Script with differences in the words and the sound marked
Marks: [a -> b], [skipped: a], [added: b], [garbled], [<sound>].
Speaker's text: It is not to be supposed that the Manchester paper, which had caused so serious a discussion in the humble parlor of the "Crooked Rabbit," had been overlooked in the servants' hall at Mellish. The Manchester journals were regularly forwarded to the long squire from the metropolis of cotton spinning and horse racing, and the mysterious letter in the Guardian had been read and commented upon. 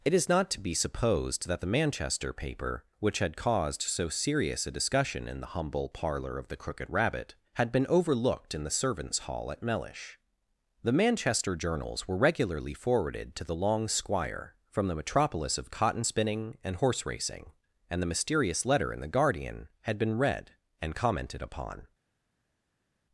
It is not to be supposed that the Manchester paper, which had caused so serious a discussion in the humble parlor of the "Crooked Rabbit," had been overlooked in the servants' hall at Mellish. The Manchester journals were regularly forwarded to the long squire from the metropolis of cotton spinning and horse racing, and the mysterious letter in the Guardian had been read and commented upon.